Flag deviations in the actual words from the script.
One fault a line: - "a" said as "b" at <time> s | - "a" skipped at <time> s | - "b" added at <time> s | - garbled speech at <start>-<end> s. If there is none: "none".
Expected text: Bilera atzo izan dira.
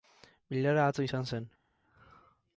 - "dira" said as "zen" at 1.3 s